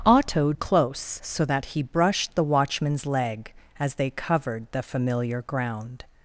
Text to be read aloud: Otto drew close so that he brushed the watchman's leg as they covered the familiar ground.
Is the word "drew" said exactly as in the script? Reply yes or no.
no